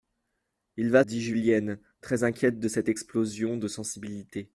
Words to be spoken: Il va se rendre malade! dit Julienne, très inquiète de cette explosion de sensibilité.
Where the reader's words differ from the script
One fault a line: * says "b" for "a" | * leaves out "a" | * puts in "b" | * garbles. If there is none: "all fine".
* leaves out "se rendre malade"